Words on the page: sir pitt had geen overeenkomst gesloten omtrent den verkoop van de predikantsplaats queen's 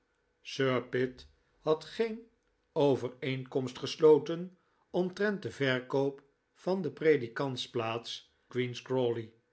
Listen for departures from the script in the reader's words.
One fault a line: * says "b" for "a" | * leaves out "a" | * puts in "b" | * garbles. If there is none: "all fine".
all fine